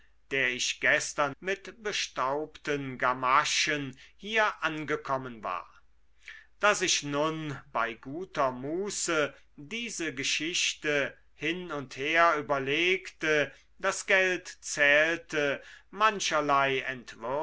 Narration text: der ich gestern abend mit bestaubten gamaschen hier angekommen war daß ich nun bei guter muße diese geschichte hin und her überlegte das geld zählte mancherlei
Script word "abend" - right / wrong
wrong